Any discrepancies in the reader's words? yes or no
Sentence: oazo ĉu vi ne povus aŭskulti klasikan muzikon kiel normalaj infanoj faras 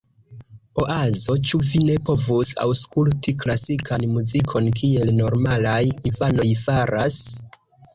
no